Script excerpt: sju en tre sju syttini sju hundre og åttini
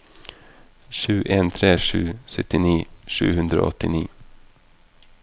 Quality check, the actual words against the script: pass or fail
pass